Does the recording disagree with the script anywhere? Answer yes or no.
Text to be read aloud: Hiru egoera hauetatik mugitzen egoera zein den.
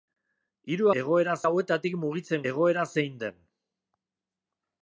no